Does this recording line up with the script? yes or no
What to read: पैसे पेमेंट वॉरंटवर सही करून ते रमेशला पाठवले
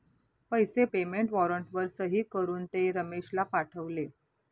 yes